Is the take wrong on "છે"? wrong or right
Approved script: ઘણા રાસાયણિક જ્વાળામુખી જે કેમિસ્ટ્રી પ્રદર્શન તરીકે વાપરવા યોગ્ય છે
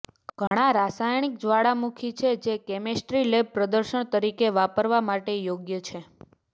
right